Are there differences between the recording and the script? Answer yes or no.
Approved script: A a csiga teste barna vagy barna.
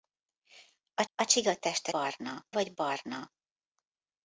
no